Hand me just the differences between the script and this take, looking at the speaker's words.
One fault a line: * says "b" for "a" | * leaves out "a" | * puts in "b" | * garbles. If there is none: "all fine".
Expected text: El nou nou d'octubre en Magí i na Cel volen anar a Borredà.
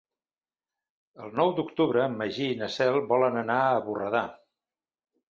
* leaves out "nou"